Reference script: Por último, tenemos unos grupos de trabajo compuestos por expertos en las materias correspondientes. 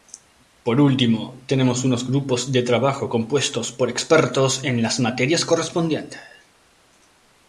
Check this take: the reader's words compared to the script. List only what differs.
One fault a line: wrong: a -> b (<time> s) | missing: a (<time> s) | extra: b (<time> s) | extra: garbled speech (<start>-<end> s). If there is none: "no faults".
no faults